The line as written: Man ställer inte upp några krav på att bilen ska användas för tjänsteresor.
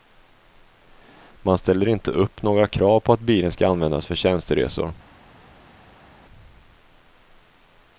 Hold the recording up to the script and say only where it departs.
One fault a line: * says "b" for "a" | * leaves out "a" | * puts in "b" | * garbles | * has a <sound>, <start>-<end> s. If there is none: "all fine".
all fine